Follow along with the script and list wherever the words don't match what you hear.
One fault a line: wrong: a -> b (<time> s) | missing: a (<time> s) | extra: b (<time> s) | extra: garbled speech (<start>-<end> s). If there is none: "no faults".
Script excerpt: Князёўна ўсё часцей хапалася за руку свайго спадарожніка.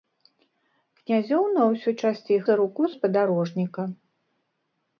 missing: хапалася (2.4 s)
missing: свайго (2.8 s)